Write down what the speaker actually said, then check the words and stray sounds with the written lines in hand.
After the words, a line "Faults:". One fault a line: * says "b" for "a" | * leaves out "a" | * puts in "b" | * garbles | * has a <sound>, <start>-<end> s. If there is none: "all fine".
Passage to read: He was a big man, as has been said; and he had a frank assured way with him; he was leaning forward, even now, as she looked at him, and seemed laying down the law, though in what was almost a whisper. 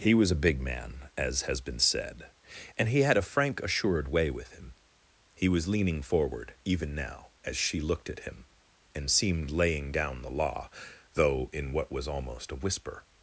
He was a big man, as has been said; and he had a frank assured way with him; he was leaning forward, even now, as she looked at him, and seemed laying down the law, though in what was almost a whisper.
Faults:
all fine